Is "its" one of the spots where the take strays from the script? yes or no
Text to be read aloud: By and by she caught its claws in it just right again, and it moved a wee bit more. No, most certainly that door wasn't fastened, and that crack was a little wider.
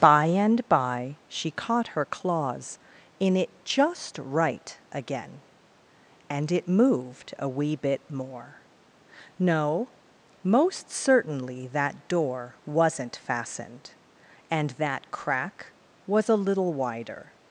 yes